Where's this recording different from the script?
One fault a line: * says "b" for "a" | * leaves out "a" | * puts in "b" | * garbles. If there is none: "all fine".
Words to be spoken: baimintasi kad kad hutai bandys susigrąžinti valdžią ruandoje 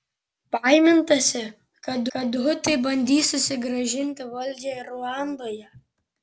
all fine